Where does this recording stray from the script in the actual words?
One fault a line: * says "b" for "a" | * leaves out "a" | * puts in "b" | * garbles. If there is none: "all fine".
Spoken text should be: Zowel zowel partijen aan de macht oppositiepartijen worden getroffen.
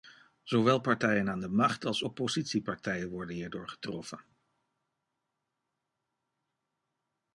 * leaves out "zowel"
* puts in "als"
* puts in "hierdoor"